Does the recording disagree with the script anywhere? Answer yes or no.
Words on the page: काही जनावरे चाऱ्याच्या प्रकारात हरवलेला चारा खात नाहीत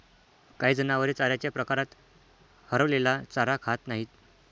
no